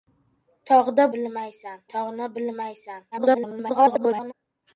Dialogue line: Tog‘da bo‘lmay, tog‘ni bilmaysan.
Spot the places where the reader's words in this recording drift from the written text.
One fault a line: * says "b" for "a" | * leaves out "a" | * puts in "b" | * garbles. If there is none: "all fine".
* says "bilmaysan" for "bo‘lmay"
* garbles